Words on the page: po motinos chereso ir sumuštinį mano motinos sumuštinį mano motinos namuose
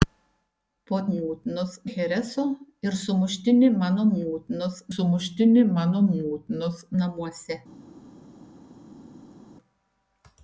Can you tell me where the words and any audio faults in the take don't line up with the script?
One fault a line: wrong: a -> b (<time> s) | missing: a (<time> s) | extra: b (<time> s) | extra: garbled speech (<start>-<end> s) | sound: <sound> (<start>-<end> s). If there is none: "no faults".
no faults